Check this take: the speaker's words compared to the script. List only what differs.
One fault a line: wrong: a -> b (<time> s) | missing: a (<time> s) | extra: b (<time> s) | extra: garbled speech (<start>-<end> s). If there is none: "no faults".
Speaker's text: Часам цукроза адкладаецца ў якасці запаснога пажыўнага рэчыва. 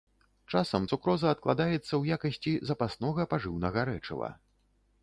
no faults